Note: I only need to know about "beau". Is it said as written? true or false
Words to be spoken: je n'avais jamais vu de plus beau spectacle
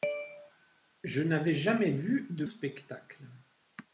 false